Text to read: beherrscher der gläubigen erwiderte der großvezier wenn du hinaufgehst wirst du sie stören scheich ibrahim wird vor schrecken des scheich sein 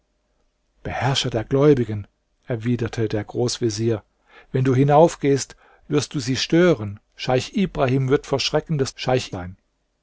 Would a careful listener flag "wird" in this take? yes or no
no